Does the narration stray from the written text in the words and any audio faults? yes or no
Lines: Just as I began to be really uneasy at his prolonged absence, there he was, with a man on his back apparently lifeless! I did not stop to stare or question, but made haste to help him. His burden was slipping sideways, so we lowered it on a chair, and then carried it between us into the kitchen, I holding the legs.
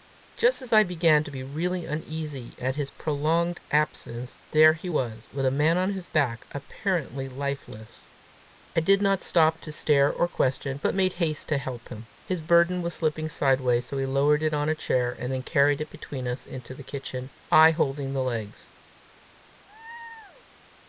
yes